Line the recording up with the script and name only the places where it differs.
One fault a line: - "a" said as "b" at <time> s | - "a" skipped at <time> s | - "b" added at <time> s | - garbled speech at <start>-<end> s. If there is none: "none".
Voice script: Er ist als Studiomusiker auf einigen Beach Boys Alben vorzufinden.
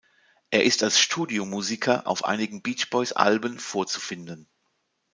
none